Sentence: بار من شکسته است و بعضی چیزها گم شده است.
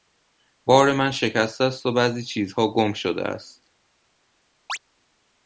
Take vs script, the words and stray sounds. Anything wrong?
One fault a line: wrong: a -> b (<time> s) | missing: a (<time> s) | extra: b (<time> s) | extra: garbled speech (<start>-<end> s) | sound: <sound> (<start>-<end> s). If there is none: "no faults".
sound: chirp (4.7-4.8 s)